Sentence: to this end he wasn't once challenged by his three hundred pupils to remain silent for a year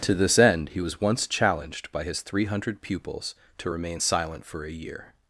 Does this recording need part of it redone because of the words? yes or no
yes